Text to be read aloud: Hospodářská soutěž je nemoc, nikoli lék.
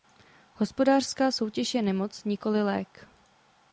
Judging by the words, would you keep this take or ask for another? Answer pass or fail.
pass